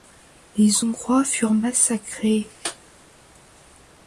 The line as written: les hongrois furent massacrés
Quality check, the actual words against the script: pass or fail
pass